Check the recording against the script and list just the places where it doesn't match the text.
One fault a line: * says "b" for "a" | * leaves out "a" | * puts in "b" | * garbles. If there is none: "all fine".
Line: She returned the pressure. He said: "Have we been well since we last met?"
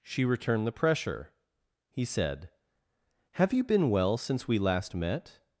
* says "you" for "we"